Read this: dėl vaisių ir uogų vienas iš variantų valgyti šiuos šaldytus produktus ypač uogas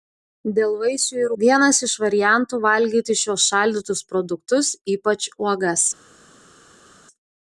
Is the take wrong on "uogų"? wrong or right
wrong